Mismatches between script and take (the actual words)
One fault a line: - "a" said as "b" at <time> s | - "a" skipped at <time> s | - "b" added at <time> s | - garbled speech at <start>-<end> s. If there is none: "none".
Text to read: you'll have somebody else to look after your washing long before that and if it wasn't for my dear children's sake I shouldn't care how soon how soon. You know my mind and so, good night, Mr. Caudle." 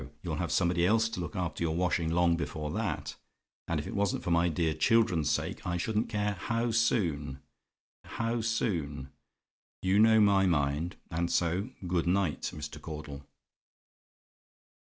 none